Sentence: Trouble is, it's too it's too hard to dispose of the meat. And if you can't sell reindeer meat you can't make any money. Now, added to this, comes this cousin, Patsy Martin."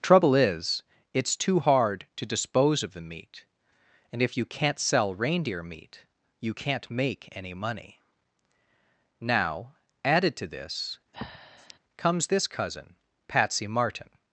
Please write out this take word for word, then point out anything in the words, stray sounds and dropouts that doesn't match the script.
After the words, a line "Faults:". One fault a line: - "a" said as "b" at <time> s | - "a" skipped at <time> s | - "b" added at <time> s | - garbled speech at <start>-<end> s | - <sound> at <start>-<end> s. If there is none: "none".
Trouble is, it's too hard to dispose of the meat. And if you can't sell reindeer meat you can't make any money. Now, added to this, comes this cousin, Patsy Martin."
Faults:
- "it's too" skipped at 1.6 s
- breath at 11.1-11.8 s